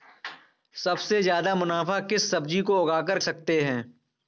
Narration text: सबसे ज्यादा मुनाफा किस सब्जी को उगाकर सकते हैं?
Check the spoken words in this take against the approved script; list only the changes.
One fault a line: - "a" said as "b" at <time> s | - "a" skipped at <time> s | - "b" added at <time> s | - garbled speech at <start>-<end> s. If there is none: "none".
none